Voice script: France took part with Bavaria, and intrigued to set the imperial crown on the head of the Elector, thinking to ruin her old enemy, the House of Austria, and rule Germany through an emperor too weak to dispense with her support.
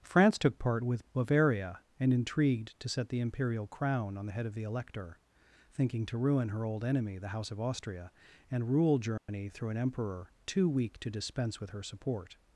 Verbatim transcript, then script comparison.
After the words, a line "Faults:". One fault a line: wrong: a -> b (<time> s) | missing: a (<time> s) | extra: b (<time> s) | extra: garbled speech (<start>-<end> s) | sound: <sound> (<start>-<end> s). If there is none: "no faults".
France took part with Bavaria, and intrigued to set the imperial crown on the head of the Elector, thinking to ruin her old enemy, the House of Austria, and rule Germany through an emperor too weak to dispense with her support.
Faults:
sound: dropout (9.2-9.3 s)